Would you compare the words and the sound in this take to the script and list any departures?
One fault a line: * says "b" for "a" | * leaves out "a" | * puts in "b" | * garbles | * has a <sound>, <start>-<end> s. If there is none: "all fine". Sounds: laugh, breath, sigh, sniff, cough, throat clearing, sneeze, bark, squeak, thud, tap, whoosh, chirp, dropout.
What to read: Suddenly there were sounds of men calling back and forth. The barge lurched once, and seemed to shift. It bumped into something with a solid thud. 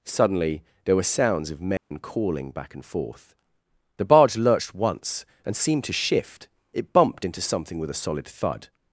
* has a dropout, 1.8-1.9 s